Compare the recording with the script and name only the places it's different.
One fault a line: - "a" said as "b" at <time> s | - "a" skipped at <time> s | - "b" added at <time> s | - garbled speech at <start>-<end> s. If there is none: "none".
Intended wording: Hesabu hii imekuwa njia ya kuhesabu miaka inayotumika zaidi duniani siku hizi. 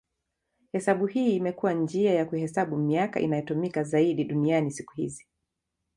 none